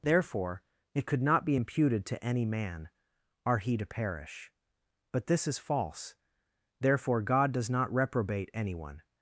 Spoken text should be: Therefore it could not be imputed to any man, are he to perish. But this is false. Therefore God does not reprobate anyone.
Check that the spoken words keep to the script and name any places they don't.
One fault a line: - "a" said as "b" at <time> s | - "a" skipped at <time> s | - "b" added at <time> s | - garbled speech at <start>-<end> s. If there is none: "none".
none